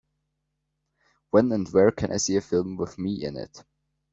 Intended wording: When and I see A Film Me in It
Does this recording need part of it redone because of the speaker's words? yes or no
yes